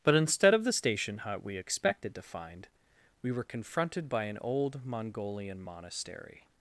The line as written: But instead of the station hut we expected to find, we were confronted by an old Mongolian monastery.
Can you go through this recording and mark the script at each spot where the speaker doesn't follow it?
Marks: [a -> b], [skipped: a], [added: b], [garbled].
But instead of the station hut we expected to find, we were confronted by an old Mongolian monastery.